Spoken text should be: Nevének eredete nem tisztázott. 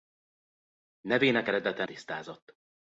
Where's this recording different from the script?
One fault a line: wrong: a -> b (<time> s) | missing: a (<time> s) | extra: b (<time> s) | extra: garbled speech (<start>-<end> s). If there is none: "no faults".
missing: nem (1.8 s)